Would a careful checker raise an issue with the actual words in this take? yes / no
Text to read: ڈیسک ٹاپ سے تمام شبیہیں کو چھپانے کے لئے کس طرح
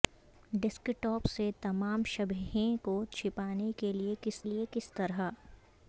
yes